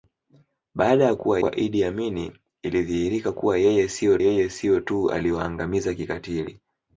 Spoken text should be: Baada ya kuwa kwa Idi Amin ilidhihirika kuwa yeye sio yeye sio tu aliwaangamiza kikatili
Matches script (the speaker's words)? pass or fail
pass